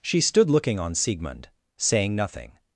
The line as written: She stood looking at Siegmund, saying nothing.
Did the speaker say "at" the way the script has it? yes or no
no